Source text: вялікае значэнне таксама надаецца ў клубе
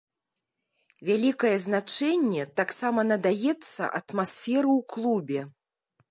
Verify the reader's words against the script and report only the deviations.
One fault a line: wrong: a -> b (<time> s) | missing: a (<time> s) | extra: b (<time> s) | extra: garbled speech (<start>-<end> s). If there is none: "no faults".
extra: атмасферы (4.0 s)